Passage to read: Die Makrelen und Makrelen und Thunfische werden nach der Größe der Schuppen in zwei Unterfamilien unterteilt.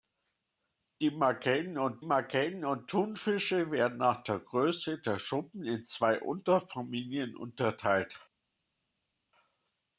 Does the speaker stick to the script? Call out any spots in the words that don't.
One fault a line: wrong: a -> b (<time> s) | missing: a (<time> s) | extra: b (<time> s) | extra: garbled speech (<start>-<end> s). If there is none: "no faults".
no faults